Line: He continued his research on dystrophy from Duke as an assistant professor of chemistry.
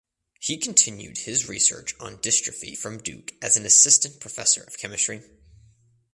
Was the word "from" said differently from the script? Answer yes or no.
no